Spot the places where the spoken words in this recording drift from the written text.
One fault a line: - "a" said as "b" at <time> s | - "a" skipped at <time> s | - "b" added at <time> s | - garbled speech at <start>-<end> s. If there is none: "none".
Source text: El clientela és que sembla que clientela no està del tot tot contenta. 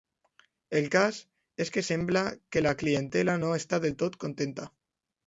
- "clientela" said as "cas" at 0.9 s
- "la" added at 2.6 s
- "tot" skipped at 4.2 s